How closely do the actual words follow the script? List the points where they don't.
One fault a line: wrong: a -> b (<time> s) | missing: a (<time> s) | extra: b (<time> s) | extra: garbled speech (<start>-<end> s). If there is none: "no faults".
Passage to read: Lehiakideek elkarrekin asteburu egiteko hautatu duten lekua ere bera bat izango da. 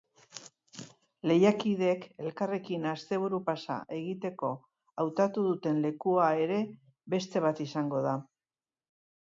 extra: pasa (3.5 s)
wrong: bera -> beste (7.2 s)